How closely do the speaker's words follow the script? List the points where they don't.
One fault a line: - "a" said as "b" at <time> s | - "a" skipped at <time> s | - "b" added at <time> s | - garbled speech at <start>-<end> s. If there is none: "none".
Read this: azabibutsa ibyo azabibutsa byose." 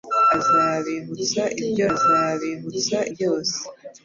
none